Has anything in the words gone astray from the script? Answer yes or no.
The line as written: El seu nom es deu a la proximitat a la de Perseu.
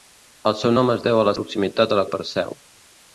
no